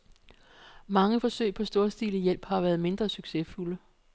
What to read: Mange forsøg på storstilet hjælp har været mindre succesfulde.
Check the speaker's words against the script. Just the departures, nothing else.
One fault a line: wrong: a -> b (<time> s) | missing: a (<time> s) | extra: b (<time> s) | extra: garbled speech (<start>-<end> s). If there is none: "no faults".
no faults